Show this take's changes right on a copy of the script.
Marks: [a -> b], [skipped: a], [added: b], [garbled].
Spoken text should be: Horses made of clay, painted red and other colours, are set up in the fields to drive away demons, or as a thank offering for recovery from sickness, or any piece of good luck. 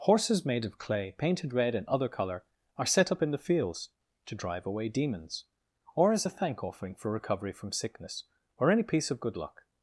Horses made of clay, painted red and other [colours, -> colour] are set up in the fields to drive away demons, or as a thank offering for recovery from sickness, or any piece of good luck.